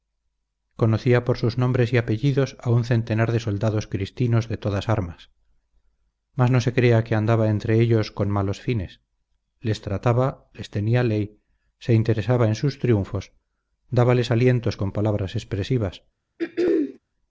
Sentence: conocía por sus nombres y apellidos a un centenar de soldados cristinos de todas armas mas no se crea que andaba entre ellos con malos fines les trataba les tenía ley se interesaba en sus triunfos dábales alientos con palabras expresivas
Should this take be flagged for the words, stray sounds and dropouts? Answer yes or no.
yes